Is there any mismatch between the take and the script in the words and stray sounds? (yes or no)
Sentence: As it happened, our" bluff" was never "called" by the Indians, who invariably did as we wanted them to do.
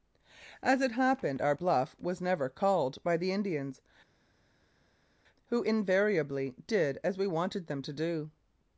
no